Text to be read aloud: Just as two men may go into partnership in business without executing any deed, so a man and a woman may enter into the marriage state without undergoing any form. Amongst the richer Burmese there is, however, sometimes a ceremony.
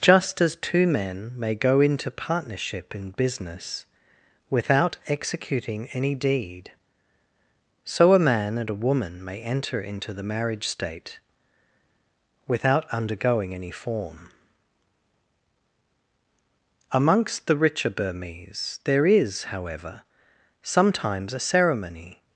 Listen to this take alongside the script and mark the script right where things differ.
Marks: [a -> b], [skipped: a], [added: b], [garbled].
Just as two men may go into partnership in business without executing any deed, so a man and a woman may enter into the marriage state without undergoing any form. Amongst the richer Burmese there is, however, sometimes a ceremony.